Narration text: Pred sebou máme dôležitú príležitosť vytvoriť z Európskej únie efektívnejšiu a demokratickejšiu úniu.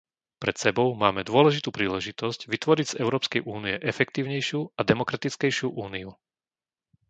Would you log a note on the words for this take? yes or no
no